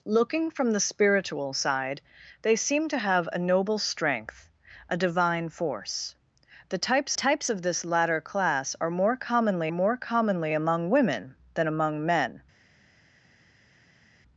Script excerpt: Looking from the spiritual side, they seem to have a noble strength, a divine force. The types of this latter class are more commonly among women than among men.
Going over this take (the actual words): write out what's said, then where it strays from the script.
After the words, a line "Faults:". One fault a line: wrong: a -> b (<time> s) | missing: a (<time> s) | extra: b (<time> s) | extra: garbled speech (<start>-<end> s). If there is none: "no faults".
Looking from the spiritual side, they seem to have a noble strength, a divine force. The types types of this latter class are more commonly more commonly among women than among men.
Faults:
extra: types (7.1 s)
extra: more commonly (9.7 s)